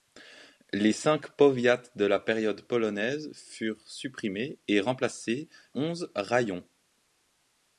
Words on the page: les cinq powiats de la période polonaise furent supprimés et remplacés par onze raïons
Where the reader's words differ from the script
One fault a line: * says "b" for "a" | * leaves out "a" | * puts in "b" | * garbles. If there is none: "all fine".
* leaves out "par"